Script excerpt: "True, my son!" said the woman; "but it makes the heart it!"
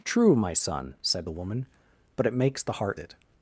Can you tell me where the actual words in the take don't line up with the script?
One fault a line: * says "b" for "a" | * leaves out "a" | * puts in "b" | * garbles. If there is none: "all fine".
all fine